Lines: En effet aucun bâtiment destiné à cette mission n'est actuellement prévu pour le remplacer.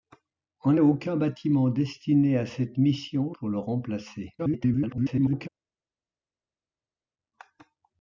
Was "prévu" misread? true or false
true